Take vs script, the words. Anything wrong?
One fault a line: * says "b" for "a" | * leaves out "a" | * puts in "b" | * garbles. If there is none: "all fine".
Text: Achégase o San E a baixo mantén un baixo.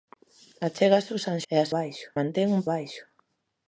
all fine